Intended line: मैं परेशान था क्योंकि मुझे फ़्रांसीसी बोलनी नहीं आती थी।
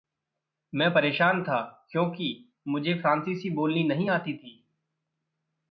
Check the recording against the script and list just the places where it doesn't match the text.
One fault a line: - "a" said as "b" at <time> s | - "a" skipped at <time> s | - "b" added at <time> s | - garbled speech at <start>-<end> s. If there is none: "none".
none